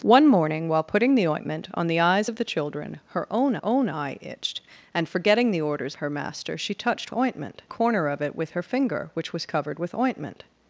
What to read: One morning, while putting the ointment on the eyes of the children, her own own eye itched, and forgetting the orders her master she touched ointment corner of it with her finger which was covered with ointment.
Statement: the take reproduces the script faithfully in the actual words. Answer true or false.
true